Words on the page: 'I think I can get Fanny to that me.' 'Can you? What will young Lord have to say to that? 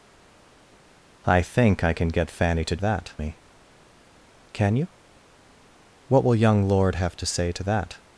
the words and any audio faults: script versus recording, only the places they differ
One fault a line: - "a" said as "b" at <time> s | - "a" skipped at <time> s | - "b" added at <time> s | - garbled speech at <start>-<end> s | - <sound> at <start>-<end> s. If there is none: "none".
none